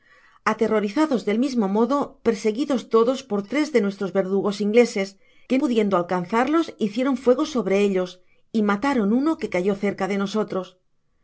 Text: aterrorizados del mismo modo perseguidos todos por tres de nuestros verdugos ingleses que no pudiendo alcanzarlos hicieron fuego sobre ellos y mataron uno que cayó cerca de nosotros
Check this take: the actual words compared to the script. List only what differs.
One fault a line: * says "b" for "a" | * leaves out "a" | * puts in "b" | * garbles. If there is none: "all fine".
* leaves out "no"